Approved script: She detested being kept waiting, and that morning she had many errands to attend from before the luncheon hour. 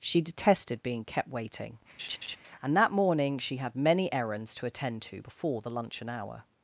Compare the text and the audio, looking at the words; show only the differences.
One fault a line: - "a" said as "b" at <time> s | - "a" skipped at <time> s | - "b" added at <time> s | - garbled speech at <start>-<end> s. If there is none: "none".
- "from" said as "to" at 5.0 s